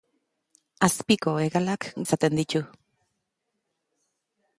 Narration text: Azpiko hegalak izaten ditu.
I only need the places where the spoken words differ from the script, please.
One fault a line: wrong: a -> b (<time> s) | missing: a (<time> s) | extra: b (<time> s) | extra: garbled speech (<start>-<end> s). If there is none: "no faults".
no faults